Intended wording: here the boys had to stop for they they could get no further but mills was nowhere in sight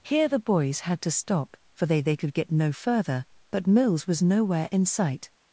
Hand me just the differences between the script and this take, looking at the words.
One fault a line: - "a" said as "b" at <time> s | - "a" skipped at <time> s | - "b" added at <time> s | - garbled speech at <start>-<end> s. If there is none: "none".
none